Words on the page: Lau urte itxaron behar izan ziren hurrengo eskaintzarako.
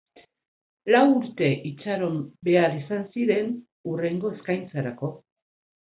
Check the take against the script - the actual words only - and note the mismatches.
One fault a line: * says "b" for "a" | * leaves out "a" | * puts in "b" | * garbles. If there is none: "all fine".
all fine